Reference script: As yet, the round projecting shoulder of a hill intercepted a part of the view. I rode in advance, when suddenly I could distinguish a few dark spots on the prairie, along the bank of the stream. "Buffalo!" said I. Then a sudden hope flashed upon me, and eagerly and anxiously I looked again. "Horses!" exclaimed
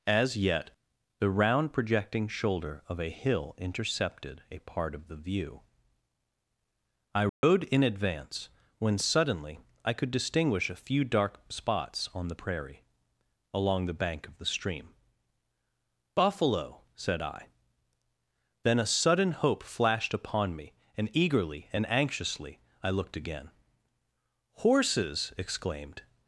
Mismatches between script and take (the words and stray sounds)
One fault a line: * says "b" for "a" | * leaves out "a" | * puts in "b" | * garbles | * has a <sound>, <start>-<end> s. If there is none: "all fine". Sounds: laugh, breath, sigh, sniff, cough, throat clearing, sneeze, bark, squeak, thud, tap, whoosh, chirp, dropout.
* has a dropout, 7.3-7.4 s